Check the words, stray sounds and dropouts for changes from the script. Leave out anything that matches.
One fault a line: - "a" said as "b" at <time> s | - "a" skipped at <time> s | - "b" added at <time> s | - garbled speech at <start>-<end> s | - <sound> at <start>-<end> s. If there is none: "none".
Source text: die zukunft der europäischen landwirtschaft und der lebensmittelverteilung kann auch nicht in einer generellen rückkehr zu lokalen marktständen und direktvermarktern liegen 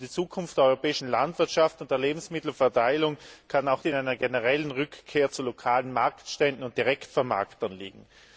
- "nicht" skipped at 3.9 s